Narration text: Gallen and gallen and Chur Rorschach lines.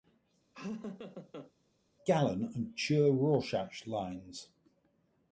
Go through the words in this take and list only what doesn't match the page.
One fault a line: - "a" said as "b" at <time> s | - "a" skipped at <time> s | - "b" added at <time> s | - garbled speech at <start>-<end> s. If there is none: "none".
- "gallen and" skipped at 2.8 s